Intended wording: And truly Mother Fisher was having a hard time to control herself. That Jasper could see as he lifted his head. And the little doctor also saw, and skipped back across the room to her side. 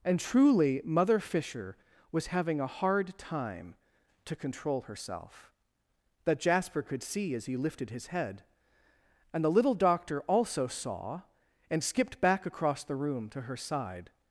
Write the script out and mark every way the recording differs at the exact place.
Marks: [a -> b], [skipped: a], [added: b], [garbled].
And truly Mother Fisher was having a hard time to control herself. That Jasper could see as he lifted his head. And the little doctor also saw, and skipped back across the room to her side.